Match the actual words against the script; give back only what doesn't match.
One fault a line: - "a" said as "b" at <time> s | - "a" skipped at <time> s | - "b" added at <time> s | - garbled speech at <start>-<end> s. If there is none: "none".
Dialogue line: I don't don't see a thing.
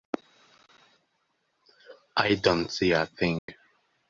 - "don't" skipped at 2.7 s